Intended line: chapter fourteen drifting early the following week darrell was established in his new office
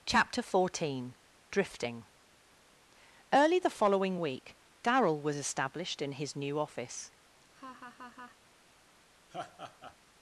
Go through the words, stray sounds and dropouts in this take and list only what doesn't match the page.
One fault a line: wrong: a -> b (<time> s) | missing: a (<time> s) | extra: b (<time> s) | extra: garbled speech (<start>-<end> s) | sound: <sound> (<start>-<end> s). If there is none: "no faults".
sound: laugh (7.4-8.4 s)
sound: laugh (9.3-10.0 s)